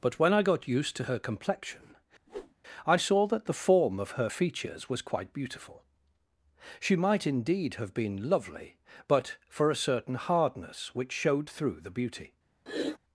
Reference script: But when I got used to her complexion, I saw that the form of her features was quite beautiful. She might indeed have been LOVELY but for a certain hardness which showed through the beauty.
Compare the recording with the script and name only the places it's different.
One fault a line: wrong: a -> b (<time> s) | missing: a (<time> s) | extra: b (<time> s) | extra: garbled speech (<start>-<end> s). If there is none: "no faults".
no faults